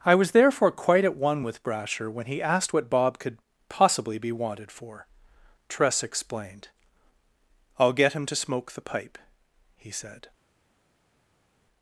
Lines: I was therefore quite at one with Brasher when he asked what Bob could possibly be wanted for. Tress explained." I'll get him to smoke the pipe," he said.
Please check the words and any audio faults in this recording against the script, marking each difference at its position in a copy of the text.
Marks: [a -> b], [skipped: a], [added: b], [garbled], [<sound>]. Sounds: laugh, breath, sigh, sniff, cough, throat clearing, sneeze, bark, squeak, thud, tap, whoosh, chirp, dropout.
I was therefore quite at one with Brasher when he asked what Bob could possibly be wanted for. Tress explained." I'll get him to smoke the pipe," he said.